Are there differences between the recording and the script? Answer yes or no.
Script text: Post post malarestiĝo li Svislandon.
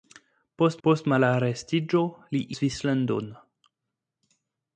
no